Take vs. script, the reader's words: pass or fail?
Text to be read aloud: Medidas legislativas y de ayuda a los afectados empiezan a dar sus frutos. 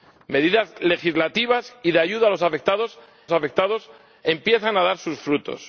fail